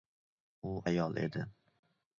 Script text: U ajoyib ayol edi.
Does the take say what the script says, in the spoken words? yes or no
no